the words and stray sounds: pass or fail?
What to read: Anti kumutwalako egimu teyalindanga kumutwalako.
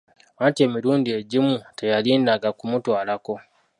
fail